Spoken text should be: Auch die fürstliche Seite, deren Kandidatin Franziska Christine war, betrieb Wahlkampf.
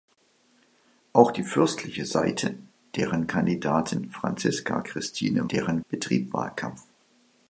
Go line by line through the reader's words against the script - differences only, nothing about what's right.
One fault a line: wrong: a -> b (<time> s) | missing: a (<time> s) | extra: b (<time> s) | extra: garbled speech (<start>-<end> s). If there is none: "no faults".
wrong: war -> deren (5.5 s)